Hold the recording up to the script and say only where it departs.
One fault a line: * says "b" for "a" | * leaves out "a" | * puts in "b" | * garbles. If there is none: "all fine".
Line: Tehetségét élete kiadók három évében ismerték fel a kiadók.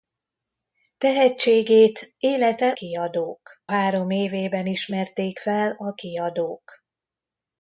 all fine